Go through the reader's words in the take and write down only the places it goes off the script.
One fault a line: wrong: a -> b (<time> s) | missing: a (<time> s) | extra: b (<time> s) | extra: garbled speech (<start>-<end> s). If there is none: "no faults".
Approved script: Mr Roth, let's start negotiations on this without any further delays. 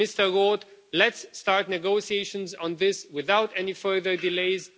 no faults